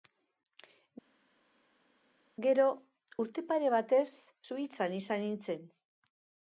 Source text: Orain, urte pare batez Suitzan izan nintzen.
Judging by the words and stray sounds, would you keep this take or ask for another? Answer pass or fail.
fail